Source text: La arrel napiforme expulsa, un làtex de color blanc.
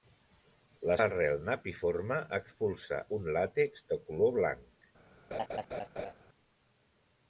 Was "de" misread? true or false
false